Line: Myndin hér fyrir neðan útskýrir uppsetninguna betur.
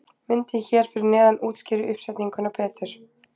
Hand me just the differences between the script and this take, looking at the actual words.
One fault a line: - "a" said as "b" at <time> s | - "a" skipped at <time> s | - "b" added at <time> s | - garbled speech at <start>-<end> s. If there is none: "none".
none